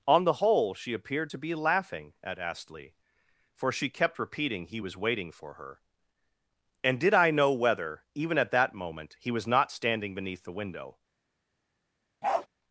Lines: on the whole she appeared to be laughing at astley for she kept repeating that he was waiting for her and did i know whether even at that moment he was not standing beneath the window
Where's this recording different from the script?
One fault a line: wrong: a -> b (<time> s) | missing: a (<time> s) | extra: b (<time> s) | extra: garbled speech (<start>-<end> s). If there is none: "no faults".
missing: that (4.7 s)